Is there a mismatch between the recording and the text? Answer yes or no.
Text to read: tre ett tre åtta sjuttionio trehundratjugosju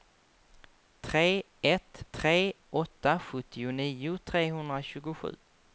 no